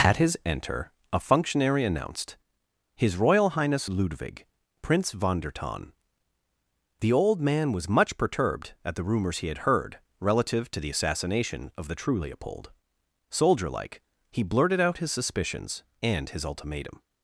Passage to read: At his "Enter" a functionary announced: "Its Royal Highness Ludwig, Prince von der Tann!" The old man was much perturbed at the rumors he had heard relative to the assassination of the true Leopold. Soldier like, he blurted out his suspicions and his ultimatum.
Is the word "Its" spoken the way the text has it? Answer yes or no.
no